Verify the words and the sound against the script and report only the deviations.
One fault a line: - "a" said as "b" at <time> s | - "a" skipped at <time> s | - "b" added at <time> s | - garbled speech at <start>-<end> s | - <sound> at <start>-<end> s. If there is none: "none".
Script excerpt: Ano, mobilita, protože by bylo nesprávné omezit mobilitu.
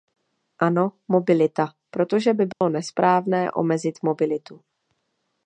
- dropout at 2.5-2.6 s